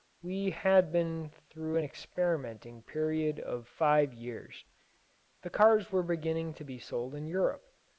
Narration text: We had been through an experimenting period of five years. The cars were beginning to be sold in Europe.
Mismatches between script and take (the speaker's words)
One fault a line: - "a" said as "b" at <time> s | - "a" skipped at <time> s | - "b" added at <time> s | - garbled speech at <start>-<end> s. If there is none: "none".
none